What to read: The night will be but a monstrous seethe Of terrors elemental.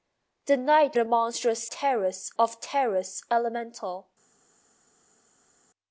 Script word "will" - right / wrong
wrong